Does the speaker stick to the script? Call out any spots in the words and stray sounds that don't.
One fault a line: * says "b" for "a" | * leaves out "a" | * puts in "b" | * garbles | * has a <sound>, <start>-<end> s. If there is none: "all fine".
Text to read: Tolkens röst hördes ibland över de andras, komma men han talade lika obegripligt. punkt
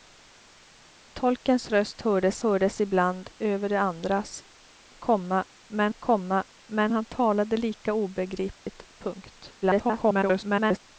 * puts in "hördes"
* puts in "komma men"
* has a dropout, 8.5-8.7 s
* garbles